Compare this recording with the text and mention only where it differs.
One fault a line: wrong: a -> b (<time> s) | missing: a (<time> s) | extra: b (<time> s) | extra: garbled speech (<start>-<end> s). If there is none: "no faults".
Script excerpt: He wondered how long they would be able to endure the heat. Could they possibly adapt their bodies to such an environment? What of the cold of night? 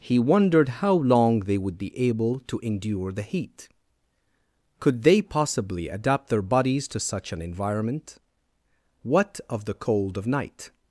no faults